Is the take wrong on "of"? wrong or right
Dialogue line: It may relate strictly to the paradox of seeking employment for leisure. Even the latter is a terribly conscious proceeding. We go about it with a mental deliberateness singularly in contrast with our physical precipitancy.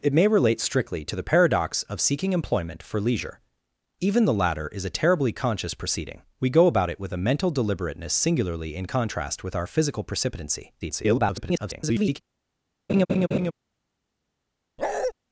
right